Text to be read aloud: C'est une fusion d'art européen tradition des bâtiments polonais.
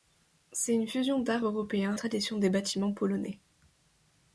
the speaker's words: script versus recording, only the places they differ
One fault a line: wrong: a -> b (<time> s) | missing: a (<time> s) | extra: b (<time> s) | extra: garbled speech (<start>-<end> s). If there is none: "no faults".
no faults